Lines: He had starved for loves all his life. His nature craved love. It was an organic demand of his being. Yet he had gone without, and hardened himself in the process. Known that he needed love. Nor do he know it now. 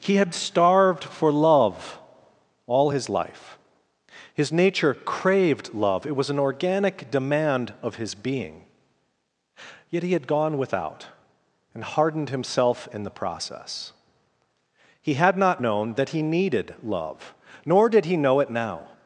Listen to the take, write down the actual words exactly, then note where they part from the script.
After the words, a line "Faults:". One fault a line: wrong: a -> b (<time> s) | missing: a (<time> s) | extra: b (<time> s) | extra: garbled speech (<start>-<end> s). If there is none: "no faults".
He had starved for love all his life. His nature craved love. It was an organic demand of his being. Yet he had gone without, and hardened himself in the process. He had not known that he needed love. Nor did he know it now.
Faults:
wrong: loves -> love (1.3 s)
extra: He had not (15.0 s)
wrong: do -> did (17.9 s)